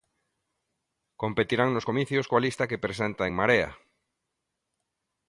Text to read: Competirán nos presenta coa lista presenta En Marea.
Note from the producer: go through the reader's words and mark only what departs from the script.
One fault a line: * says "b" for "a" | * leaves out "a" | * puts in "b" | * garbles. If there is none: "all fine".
* says "comicios" for "presenta"
* puts in "que"